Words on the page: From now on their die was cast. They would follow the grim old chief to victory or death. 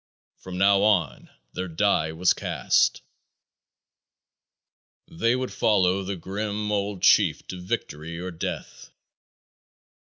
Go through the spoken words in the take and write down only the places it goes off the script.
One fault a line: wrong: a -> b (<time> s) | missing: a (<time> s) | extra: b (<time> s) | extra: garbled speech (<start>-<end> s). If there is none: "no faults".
no faults